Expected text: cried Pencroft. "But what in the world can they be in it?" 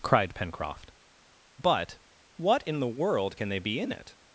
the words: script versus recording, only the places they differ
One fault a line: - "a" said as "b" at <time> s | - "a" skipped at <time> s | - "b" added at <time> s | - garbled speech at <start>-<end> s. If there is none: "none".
none